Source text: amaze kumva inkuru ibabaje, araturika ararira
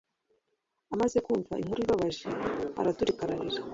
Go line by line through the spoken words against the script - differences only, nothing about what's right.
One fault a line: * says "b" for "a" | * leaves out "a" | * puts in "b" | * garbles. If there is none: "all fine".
all fine